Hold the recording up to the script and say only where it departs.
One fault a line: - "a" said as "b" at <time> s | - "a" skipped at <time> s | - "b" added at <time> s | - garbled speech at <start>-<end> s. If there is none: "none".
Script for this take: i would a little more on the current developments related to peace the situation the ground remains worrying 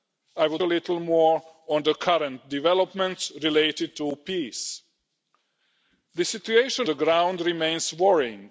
none